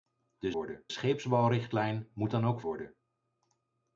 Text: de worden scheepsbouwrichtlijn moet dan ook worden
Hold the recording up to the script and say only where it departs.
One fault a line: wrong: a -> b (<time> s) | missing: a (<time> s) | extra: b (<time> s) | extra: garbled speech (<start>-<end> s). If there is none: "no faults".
no faults